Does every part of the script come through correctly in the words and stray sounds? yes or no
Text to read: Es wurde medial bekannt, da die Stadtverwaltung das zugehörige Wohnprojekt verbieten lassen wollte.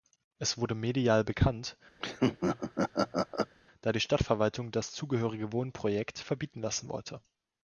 no